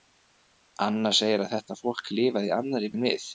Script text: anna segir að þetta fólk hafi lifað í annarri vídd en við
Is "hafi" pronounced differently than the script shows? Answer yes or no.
yes